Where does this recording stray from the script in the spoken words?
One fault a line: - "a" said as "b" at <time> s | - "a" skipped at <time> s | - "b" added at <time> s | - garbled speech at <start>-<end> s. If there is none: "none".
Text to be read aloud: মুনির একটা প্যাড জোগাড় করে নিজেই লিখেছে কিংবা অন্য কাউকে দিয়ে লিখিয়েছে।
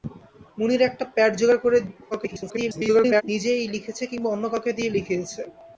- garbled speech at 2.1-3.2 s